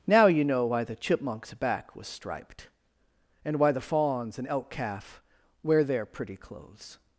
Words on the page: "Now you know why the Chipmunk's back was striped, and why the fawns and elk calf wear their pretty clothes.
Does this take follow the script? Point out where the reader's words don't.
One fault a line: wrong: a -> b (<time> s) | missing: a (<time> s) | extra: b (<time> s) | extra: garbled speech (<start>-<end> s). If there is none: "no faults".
no faults